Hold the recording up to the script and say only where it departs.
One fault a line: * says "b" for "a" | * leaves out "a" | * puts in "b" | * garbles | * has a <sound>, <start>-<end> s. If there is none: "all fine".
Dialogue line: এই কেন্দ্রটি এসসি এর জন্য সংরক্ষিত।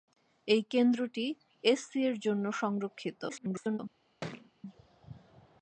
* garbles
* has a thud, 4.2-4.5 s